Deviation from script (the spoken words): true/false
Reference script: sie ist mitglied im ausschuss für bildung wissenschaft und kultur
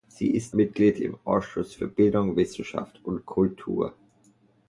false